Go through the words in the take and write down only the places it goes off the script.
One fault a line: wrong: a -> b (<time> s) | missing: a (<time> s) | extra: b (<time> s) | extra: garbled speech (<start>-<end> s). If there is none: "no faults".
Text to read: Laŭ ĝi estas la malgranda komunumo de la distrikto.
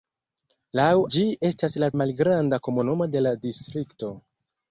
no faults